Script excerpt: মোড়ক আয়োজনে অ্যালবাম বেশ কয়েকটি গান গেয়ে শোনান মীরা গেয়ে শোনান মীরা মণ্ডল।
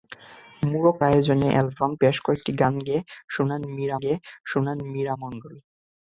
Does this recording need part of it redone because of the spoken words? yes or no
no